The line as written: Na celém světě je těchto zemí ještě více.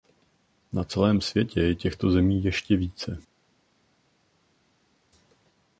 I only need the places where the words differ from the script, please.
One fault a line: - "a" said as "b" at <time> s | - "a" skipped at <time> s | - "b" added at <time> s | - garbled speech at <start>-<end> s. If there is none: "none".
none